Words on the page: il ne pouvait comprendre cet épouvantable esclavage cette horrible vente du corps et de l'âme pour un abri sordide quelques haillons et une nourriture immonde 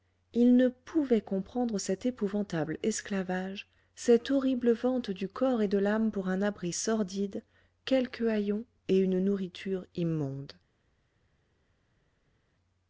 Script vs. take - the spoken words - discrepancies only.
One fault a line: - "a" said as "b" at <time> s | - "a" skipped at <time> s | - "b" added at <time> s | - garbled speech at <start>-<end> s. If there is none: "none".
none